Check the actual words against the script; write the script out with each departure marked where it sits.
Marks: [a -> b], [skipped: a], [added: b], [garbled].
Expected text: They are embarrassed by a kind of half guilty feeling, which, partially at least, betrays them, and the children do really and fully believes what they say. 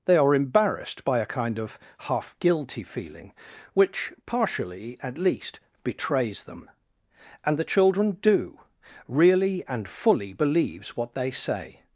They are embarrassed by a kind of half guilty feeling, which, partially at least, betrays them, and the children do really and fully believes what they say.